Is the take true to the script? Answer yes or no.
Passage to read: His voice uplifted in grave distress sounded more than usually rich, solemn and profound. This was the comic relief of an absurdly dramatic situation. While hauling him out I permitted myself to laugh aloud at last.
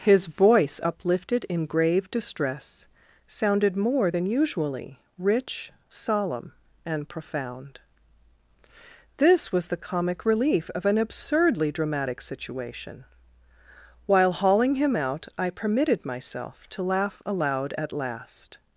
yes